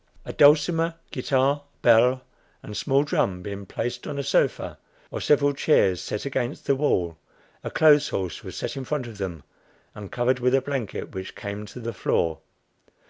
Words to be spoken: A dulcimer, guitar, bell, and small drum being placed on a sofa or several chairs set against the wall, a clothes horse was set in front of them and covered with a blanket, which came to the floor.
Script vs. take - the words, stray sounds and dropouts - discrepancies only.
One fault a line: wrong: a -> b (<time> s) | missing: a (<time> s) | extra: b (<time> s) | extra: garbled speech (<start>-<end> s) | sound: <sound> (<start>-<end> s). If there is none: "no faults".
no faults